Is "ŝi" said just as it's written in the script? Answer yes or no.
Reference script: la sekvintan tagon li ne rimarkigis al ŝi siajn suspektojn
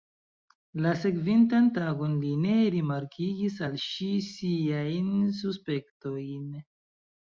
yes